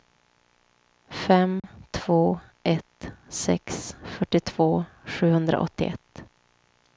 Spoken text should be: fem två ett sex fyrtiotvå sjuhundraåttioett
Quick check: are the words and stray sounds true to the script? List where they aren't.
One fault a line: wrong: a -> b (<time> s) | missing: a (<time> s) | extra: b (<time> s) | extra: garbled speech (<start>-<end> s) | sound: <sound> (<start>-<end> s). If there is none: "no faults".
sound: dropout (1.6-1.6 s)